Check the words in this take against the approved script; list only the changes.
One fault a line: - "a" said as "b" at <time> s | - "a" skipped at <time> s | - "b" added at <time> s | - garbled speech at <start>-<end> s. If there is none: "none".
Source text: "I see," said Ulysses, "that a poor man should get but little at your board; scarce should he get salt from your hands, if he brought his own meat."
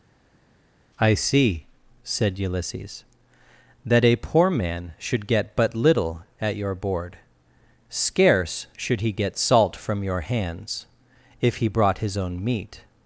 none